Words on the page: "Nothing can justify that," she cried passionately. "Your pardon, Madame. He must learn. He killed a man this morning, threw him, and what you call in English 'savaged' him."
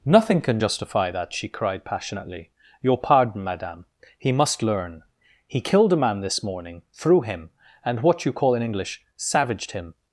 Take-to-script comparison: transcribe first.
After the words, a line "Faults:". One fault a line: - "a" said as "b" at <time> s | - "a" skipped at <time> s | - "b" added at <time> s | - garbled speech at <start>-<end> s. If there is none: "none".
"Nothing can justify that," she cried passionately. "Your pardon, Madame. He must learn. He killed a man this morning, threw him, and what you call in English 'savaged' him."
Faults:
none